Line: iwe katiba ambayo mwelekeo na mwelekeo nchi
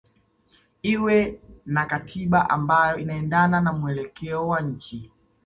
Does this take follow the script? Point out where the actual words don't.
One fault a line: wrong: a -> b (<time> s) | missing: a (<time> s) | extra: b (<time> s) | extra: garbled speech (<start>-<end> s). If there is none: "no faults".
extra: na (1.6 s)
wrong: mwelekeo -> inaendana (3.0 s)
extra: wa (4.5 s)